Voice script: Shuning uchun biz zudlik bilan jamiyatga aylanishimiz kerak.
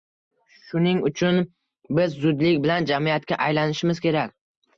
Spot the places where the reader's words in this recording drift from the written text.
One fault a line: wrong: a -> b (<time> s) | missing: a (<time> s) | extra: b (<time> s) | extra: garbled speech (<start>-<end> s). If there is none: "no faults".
no faults